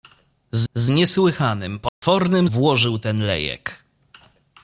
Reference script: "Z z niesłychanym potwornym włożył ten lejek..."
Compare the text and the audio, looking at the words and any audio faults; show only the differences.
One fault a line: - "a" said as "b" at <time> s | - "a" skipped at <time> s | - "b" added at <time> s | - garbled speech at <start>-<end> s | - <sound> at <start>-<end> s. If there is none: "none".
- dropout at 1.9-2.0 s